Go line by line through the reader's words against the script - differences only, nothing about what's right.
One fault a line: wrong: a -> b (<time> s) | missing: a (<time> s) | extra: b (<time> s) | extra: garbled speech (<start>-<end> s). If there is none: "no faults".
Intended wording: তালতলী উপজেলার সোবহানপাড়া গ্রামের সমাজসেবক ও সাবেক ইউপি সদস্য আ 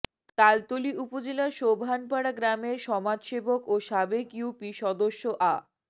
no faults